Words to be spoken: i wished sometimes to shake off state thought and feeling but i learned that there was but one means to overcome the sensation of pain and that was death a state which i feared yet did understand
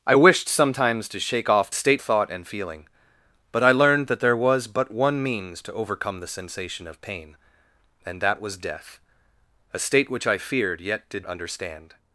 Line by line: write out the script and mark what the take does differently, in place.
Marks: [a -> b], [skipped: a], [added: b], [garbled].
i wished sometimes to shake off state thought and feeling but i learned that there was but one means to overcome the sensation of pain and that was death a state which i feared yet did understand